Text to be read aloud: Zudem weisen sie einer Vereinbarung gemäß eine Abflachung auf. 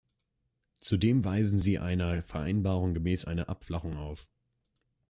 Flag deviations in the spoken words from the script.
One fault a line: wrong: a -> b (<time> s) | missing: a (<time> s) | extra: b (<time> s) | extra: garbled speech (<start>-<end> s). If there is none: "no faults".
no faults